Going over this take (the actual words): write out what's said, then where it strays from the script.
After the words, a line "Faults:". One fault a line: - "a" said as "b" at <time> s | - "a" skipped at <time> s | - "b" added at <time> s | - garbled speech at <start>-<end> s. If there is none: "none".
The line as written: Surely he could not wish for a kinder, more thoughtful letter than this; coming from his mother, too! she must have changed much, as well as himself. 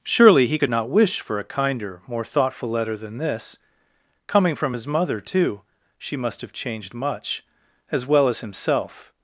Surely he could not wish for a kinder, more thoughtful letter than this; coming from his mother, too! she must have changed much, as well as himself.
Faults:
none